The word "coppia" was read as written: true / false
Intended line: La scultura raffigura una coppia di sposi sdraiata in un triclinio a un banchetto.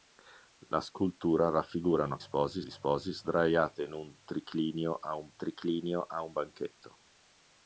false